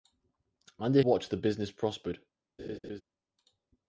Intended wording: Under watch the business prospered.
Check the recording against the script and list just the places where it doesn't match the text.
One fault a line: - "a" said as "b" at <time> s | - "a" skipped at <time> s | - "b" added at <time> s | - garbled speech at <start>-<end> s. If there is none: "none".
none